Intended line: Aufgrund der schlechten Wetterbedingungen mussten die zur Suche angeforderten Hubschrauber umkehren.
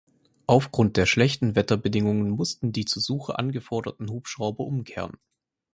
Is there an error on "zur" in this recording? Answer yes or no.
no